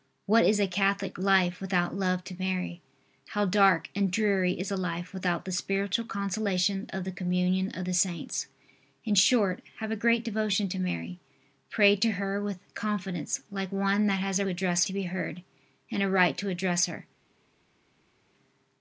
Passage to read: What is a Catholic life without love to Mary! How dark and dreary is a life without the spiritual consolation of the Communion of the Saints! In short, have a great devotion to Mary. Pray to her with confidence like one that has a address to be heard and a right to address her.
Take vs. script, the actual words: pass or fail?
pass